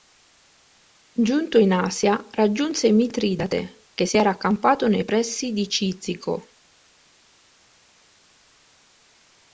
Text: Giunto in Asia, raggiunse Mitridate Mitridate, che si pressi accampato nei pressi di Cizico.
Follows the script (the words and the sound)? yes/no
no